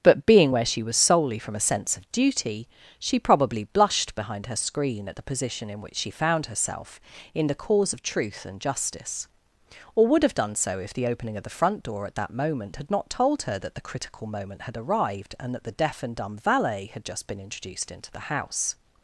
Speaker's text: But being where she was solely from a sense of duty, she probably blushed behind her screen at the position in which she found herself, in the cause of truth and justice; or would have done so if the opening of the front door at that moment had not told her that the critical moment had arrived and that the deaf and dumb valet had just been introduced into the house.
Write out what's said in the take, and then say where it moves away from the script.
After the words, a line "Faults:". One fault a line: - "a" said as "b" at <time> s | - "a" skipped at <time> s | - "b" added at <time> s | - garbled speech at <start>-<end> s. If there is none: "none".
But being where she was solely from a sense of duty, she probably blushed behind her screen at the position in which she found herself, in the cause of truth and justice; or would have done so if the opening of the front door at that moment had not told her that the critical moment had arrived and that the deaf and dumb valet had just been introduced into the house.
Faults:
none